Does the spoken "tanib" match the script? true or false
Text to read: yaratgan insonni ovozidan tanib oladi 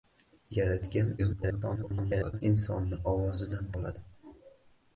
false